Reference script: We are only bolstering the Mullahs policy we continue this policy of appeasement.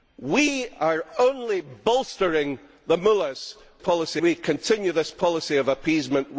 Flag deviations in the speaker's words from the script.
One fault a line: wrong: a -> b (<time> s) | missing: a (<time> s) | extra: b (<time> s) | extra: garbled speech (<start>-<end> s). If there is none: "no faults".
no faults